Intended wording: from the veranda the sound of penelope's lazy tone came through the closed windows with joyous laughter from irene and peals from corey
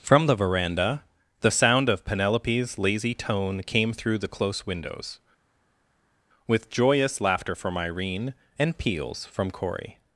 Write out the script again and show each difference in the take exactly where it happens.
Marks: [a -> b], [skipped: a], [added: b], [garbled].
from the veranda the sound of penelope's lazy tone came through the [closed -> close] windows with joyous laughter from irene and peals from corey